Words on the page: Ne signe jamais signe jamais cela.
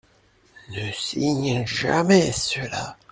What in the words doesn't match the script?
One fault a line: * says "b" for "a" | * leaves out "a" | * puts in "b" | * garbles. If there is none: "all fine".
* leaves out "signe jamais"